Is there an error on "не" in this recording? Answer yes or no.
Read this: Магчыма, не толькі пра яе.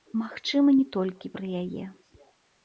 no